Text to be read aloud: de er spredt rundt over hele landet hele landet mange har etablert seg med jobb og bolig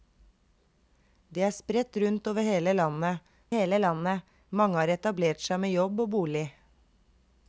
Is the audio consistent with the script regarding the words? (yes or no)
yes